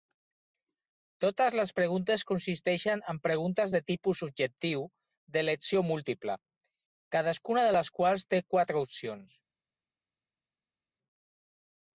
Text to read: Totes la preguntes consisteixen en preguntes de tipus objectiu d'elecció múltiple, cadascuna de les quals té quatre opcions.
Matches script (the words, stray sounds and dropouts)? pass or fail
fail